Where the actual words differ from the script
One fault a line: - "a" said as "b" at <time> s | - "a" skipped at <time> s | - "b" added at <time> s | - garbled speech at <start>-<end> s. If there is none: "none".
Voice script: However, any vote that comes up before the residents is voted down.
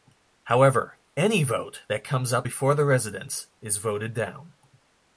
none